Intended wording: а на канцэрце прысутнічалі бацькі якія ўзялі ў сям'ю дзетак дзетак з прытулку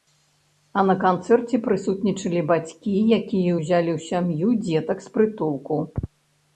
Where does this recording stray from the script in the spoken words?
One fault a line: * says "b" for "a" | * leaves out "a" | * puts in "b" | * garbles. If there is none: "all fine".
* leaves out "дзетак"